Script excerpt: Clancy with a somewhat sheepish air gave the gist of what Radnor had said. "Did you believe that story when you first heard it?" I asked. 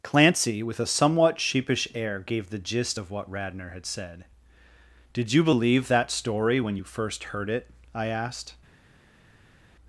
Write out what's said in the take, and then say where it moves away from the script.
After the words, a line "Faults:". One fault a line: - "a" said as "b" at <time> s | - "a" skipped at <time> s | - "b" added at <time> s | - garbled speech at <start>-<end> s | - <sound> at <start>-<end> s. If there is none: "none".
Clancy with a somewhat sheepish air gave the gist of what Radnor had said. "Did you believe that story when you first heard it?" I asked.
Faults:
none